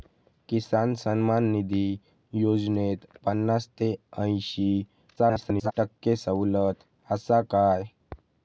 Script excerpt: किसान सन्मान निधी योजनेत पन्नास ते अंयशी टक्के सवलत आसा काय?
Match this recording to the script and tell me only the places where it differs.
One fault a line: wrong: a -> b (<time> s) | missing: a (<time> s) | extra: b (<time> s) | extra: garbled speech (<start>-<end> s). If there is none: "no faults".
extra: garbled speech (5.2-5.7 s)